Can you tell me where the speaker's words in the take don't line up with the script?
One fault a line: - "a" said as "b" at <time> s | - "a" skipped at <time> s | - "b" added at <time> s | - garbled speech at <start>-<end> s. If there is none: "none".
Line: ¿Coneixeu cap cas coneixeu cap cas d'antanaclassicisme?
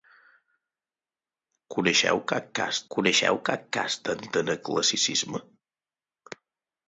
none